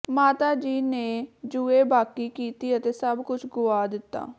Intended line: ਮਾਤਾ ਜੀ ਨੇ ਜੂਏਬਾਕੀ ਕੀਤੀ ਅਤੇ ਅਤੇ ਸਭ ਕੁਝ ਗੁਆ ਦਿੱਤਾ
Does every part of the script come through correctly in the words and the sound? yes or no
no